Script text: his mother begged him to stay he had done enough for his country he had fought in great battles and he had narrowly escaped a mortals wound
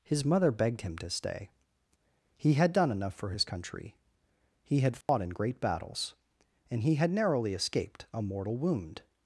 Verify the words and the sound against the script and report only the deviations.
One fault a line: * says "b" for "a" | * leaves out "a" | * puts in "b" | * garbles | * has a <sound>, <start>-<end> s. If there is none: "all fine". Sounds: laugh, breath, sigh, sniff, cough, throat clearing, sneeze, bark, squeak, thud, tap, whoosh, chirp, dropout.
* has a dropout, 5.0-5.1 s
* says "mortal" for "mortals"